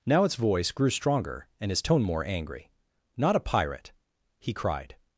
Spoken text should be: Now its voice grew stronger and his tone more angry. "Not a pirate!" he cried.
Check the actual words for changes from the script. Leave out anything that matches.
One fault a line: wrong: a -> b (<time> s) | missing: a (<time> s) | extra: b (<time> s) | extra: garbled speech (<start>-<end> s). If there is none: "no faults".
no faults